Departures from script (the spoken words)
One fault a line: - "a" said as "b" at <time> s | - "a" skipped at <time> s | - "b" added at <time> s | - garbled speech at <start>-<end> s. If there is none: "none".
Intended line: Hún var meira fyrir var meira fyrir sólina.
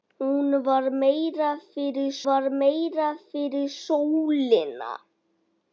none